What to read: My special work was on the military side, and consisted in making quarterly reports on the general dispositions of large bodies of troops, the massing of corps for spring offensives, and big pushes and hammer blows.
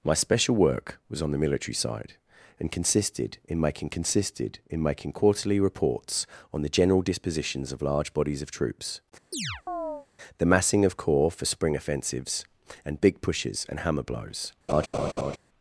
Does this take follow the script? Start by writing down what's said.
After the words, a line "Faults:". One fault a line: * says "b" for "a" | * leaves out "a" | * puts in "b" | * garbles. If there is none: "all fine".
My special work was on the military side, and consisted in making consisted in making quarterly reports on the general dispositions of large bodies of troops, the massing of corps for spring offensives, and big pushes and hammer blows.
Faults:
* puts in "consisted in making"